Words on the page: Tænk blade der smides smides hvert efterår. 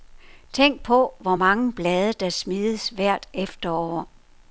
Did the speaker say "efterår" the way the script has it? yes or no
yes